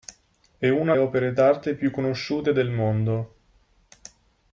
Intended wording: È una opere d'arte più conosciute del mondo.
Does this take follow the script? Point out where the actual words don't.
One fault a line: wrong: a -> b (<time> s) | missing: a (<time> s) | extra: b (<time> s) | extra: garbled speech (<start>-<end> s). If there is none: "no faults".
no faults